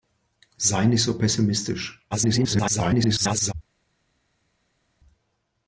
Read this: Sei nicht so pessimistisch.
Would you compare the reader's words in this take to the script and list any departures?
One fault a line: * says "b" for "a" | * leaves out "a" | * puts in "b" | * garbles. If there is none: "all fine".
* garbles